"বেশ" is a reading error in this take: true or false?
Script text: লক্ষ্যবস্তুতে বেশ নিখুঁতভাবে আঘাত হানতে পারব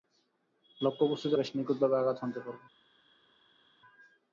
false